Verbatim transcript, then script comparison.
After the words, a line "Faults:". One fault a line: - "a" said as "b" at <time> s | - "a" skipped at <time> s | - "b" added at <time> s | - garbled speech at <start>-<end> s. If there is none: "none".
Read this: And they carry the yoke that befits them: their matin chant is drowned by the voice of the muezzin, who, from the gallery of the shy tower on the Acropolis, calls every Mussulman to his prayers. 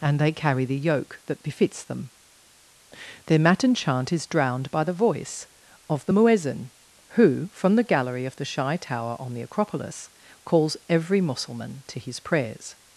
And they carry the yoke that befits them: their matin chant is drowned by the voice of the muezzin, who, from the gallery of the shy tower on the Acropolis, calls every Mussulman to his prayers.
Faults:
none